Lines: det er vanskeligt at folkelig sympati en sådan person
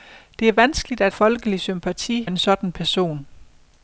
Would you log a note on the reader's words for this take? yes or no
no